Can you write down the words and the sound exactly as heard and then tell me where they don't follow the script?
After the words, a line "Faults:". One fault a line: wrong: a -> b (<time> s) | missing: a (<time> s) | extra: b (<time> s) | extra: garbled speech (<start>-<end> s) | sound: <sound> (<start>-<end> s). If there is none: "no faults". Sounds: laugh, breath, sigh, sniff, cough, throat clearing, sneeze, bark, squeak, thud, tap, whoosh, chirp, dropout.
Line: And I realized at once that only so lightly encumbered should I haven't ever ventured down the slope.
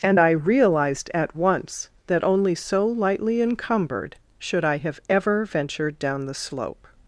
And I realized at once that only so lightly encumbered should I have ever ventured down the slope.
Faults:
wrong: haven't -> have (4.8 s)